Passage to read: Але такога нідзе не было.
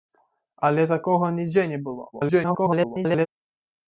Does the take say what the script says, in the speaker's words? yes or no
no